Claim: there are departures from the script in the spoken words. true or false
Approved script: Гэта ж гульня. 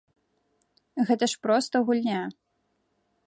true